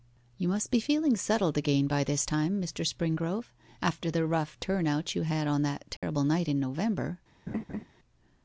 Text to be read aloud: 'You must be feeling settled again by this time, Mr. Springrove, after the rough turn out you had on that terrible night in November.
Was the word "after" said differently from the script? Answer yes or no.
no